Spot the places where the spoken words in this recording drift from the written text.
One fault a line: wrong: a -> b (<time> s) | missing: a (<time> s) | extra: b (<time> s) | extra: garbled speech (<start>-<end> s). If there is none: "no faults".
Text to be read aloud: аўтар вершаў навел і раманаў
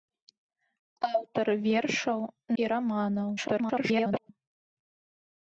missing: навел (2.2 s)
extra: garbled speech (3.4-4.3 s)